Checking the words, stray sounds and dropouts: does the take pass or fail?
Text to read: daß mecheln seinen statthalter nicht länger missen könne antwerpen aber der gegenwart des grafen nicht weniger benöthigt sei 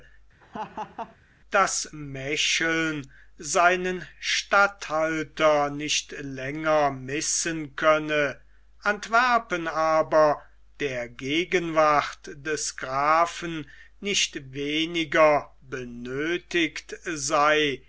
fail